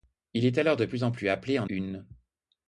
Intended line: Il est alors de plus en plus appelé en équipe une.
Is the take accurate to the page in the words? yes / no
no